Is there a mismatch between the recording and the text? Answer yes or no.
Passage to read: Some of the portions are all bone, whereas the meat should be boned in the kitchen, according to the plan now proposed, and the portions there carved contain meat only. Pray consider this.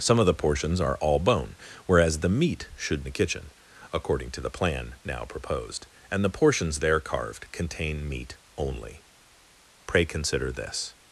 yes